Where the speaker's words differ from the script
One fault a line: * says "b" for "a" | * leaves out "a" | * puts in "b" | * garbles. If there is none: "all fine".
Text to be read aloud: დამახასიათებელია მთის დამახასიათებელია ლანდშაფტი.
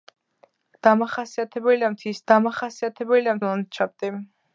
all fine